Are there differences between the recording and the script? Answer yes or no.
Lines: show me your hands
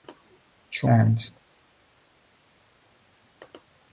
yes